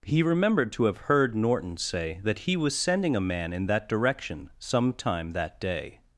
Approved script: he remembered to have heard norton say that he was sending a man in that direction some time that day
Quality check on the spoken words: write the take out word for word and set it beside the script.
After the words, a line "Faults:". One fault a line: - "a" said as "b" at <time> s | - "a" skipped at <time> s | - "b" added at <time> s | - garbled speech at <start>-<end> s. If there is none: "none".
he remembered to have heard norton say that he was sending a man in that direction some time that day
Faults:
none